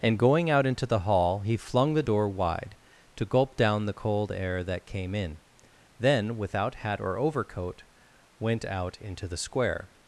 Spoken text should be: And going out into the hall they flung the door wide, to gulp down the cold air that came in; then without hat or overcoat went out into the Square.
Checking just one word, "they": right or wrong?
wrong